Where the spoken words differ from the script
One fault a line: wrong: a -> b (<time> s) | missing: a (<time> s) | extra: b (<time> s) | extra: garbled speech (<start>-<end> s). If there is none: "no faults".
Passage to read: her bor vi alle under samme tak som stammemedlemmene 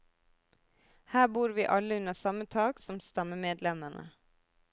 no faults